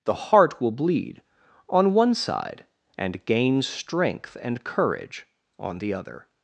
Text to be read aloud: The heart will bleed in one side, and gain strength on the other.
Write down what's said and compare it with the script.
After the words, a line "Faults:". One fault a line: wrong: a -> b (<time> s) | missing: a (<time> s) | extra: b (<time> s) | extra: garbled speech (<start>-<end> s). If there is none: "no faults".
The heart will bleed on one side, and gain strength and courage on the other.
Faults:
wrong: in -> on (1.7 s)
extra: and courage (4.4 s)